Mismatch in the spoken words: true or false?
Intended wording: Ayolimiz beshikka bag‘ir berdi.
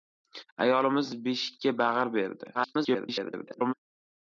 true